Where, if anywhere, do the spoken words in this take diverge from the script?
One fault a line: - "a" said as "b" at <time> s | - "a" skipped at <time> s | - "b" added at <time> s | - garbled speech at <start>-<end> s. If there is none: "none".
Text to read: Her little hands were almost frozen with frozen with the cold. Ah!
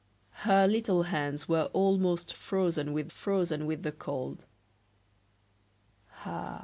none